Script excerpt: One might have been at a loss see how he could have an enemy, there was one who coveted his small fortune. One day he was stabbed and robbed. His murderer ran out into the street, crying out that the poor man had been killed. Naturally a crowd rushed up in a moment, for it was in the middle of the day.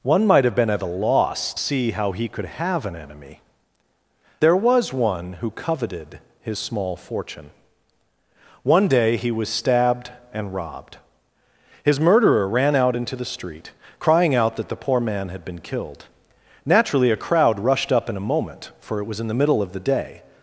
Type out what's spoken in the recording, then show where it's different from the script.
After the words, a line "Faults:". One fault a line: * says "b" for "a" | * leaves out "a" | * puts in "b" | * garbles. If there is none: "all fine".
One might have been at a loss see how he could have an enemy, there was one who coveted his small fortune. One day he was stabbed and robbed. His murderer ran out into the street, crying out that the poor man had been killed. Naturally a crowd rushed up in a moment, for it was in the middle of the day.
Faults:
all fine